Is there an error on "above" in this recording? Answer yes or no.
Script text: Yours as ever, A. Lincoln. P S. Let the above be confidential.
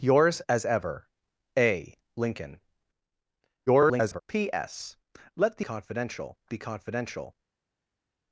yes